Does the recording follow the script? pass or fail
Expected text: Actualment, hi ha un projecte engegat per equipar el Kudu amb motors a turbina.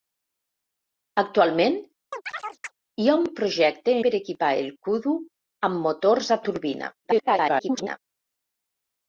fail